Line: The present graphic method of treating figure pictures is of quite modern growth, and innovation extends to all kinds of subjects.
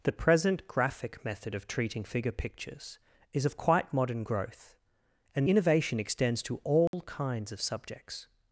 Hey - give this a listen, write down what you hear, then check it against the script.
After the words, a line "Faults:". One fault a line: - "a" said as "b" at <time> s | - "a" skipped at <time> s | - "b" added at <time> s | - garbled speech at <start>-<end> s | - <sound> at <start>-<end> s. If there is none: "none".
The present graphic method of treating figure pictures is of quite modern growth, and innovation extends to all kinds of subjects.
Faults:
- dropout at 6.9-6.9 s